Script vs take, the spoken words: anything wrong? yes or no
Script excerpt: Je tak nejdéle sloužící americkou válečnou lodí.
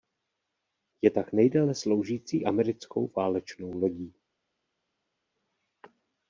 no